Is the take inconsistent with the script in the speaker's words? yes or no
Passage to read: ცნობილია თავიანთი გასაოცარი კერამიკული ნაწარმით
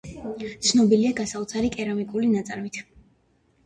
yes